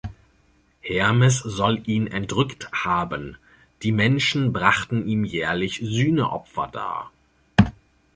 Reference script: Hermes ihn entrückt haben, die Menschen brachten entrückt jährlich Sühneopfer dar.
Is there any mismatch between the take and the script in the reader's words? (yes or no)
yes